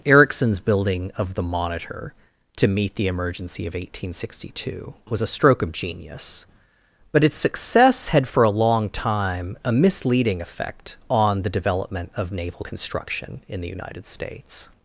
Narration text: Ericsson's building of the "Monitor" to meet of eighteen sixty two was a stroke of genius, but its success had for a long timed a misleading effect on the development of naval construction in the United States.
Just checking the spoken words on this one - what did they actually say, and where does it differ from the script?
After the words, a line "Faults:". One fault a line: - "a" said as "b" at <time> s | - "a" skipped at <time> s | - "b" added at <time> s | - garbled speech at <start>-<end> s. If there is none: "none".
Ericsson's building of the "Monitor" to meet the emergency of eighteen sixty two was a stroke of genius, but its success had for a long time a misleading effect on the development of naval construction in the United States.
Faults:
- "the emergency" added at 3.0 s
- "timed" said as "time" at 8.9 s